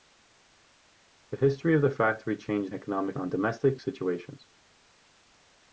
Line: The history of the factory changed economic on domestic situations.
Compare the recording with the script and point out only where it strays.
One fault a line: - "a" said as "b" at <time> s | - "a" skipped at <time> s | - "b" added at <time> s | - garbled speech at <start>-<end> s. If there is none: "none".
none